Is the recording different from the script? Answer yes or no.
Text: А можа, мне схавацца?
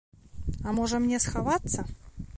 no